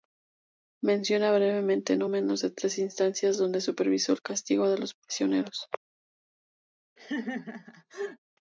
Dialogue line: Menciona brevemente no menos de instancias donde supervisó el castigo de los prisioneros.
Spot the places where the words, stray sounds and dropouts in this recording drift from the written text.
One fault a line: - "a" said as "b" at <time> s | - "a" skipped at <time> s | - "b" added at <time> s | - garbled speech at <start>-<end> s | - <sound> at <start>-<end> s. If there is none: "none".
- "tres" added at 2.5 s
- laugh at 7.0-8.2 s